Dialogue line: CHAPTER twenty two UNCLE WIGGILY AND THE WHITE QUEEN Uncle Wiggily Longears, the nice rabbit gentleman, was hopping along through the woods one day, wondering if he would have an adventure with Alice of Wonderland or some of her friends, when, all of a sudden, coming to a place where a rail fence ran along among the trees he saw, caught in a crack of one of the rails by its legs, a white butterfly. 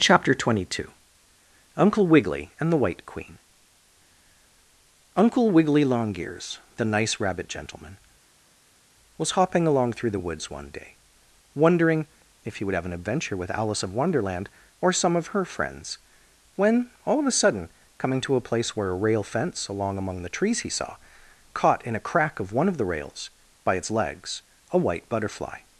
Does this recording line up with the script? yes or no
no